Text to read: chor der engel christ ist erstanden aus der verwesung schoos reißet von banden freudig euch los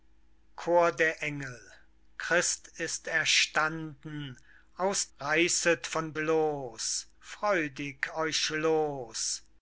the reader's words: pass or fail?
fail